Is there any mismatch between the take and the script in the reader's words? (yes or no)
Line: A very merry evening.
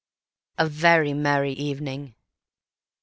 no